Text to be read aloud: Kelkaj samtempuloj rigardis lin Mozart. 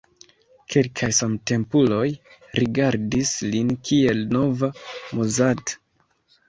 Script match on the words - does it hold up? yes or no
no